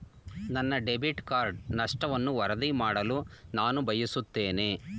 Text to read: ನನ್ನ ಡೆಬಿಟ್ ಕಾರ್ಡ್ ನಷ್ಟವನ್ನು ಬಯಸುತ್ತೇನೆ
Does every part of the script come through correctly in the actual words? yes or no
no